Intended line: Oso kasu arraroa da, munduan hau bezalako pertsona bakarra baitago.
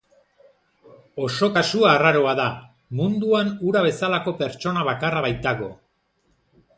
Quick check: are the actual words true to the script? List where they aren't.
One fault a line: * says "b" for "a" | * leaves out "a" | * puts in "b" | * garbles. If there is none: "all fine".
* says "hura" for "hau"